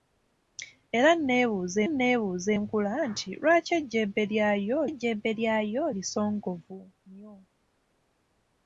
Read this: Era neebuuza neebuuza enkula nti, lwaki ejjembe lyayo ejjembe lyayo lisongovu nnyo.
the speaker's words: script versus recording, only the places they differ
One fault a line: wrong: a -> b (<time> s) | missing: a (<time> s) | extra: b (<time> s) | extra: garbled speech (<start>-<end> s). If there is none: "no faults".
no faults